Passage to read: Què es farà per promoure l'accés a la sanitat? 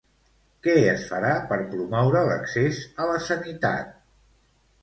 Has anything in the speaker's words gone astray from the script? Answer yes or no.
no